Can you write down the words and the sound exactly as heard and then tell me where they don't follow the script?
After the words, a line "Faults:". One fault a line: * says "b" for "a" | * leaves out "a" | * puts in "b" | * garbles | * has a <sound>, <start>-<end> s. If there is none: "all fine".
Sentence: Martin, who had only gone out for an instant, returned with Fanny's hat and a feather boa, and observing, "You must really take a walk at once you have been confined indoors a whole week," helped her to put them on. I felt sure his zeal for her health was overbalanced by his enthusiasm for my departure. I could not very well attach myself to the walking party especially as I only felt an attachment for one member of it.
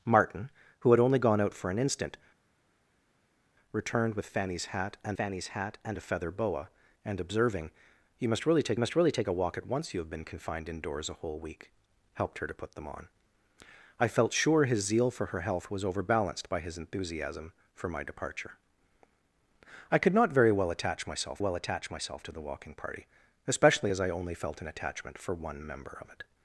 Martin, who had only gone out for an instant, returned with Fanny's hat and Fanny's hat and a feather boa, and observing, "You must really take must really take a walk at once you have been confined indoors a whole week," helped her to put them on. I felt sure his zeal for her health was overbalanced by his enthusiasm for my departure. I could not very well attach myself well attach myself to the walking party especially as I only felt an attachment for one member of it.
Faults:
* puts in "Fanny's hat and"
* puts in "must really take"
* puts in "well attach myself"